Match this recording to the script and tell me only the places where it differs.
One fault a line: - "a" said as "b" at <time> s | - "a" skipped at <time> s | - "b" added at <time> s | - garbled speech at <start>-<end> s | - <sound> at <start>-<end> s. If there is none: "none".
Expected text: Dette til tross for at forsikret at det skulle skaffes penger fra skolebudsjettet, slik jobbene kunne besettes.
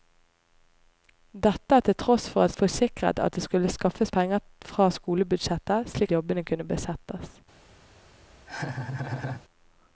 - laugh at 8.5-9.4 s